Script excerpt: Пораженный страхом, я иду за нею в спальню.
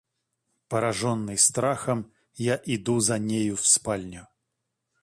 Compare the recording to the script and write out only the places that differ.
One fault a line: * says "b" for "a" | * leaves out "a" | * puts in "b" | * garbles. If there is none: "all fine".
all fine